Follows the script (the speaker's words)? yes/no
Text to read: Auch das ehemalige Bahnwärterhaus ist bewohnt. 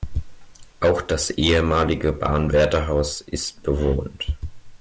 yes